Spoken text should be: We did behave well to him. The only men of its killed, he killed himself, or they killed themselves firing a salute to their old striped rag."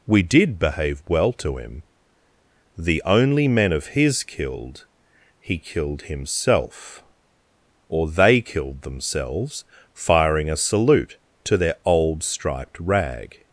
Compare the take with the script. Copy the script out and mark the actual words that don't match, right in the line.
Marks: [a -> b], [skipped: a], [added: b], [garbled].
We did behave well to him. The only men of [its -> his] killed, he killed himself, or they killed themselves firing a salute to their old striped rag."